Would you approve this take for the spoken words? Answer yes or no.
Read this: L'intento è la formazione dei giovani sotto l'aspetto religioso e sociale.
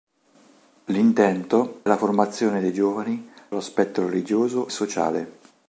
no